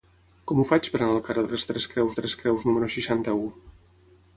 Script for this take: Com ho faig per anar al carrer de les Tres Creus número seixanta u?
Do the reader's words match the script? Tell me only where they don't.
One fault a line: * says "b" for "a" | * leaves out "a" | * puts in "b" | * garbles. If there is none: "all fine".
* puts in "Tres Creus"